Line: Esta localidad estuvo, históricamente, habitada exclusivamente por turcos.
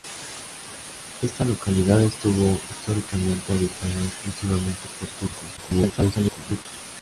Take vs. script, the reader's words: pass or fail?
fail